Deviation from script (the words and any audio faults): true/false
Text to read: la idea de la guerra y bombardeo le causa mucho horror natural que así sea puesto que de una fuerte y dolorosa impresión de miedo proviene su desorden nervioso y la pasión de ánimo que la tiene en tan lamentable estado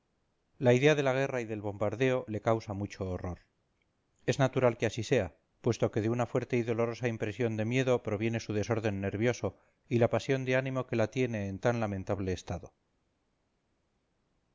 true